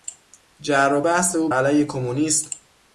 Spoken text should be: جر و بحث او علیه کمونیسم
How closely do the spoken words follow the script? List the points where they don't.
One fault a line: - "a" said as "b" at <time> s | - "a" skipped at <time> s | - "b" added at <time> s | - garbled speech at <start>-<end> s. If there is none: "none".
none